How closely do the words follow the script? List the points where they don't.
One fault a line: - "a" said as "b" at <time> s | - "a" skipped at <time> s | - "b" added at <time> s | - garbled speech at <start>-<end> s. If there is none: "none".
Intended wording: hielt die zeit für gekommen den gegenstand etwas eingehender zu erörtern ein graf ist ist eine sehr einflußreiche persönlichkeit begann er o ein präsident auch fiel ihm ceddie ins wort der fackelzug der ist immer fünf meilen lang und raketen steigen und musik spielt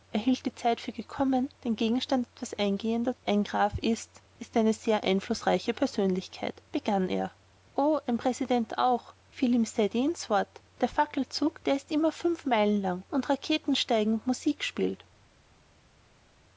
- "zu erörtern" skipped at 3.2 s